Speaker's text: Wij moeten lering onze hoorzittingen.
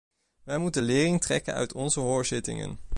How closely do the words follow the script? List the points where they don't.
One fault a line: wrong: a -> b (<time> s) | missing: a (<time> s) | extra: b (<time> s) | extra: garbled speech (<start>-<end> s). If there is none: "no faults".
extra: trekken uit (1.2 s)